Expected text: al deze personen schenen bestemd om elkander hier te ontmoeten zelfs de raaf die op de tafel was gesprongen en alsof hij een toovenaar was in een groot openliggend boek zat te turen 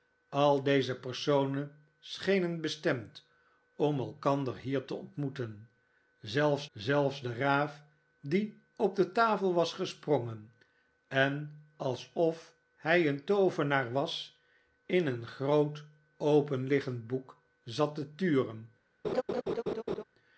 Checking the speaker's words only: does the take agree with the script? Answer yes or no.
no